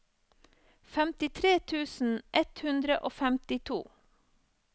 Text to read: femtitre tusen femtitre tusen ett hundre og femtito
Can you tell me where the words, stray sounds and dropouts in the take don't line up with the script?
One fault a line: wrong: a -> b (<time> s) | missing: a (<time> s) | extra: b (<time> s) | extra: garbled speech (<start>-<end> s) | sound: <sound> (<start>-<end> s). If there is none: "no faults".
missing: femtitre tusen (2.2 s)